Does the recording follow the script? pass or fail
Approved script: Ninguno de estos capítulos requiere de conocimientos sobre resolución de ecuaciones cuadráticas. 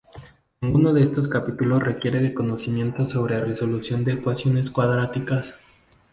pass